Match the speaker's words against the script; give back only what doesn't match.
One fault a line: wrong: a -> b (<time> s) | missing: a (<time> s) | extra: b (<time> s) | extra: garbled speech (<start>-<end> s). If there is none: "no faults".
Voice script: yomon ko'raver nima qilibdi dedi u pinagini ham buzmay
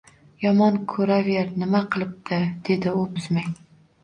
missing: pinagini ham (3.0 s)